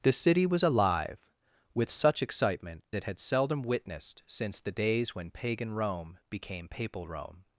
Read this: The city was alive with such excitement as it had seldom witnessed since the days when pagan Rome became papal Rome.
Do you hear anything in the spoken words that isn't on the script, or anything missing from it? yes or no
yes